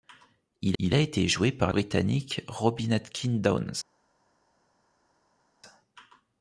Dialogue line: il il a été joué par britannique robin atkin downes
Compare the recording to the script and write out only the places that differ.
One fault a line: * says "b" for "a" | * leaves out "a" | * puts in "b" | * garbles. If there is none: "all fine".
all fine